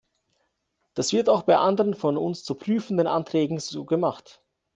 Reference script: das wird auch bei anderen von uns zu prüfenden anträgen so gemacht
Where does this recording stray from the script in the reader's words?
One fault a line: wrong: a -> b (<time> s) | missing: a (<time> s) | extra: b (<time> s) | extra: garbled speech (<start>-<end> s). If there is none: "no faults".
no faults